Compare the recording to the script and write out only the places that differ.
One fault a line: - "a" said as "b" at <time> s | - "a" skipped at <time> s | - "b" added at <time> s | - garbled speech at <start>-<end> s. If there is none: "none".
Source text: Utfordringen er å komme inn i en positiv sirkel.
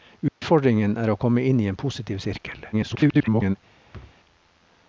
- garbled speech at 2.7-3.6 s